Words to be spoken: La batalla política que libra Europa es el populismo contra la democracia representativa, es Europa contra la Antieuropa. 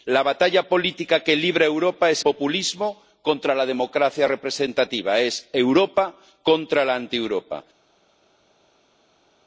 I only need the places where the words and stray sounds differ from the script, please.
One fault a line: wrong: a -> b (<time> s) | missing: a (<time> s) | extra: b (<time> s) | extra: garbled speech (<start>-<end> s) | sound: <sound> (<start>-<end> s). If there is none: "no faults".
missing: el (2.2 s)